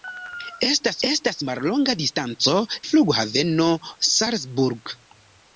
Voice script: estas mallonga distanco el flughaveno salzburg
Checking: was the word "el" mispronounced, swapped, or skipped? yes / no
yes